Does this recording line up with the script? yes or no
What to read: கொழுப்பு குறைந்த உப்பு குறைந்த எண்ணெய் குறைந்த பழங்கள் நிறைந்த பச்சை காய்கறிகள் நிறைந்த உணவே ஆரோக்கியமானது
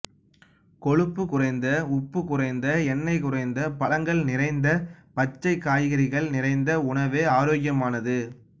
yes